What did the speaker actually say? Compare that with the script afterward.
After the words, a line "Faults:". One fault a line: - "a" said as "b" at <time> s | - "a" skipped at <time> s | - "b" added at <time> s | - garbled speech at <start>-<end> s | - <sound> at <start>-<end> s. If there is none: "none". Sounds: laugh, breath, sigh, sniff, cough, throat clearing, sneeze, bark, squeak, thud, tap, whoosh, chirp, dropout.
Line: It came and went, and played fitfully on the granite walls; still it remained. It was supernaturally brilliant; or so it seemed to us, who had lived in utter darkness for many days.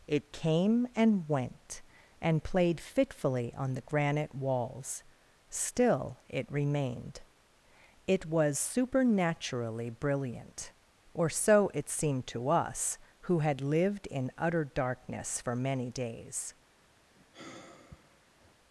It came and went, and played fitfully on the granite walls; still it remained. It was supernaturally brilliant; or so it seemed to us, who had lived in utter darkness for many days.
Faults:
- sigh at 17.2-18.6 s